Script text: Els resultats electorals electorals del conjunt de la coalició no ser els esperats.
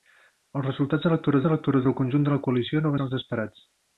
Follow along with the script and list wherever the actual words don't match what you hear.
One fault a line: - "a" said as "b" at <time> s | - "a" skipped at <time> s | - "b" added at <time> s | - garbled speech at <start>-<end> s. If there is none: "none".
none